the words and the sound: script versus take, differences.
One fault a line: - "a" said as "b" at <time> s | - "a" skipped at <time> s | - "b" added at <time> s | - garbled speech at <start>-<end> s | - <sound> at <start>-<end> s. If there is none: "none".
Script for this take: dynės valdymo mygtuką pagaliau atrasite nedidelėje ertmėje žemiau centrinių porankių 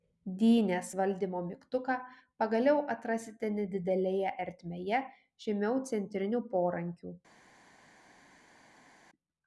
none